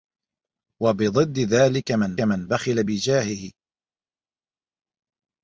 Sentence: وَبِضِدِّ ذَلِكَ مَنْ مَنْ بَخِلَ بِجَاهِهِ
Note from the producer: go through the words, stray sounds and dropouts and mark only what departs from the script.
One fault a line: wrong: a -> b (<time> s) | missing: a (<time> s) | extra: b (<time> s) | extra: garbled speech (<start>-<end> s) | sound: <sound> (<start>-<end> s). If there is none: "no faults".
no faults